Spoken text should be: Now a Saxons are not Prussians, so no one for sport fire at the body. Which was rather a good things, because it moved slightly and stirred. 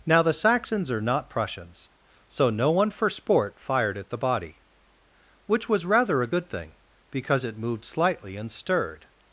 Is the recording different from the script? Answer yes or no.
yes